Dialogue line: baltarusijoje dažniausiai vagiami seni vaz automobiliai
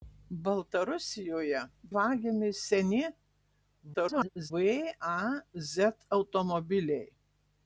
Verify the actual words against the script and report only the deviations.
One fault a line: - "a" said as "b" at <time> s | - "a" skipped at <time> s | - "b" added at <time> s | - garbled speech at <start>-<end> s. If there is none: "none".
- "dažniausiai" skipped at 1.6 s
- garbled speech at 3.9-4.5 s